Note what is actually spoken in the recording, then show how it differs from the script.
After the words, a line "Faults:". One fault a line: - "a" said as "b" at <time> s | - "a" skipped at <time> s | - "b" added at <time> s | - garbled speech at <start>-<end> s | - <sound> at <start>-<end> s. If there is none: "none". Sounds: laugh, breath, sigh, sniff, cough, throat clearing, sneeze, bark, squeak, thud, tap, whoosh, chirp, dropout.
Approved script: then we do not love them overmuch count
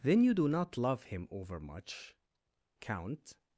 then you do not love him overmuch count
Faults:
- "we" said as "you" at 0.2 s
- "them" said as "him" at 1.0 s